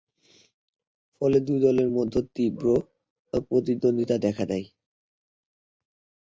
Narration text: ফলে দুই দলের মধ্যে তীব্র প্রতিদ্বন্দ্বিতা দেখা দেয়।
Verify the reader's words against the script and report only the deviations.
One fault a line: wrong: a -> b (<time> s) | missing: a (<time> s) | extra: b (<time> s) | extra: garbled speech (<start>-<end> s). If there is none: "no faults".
no faults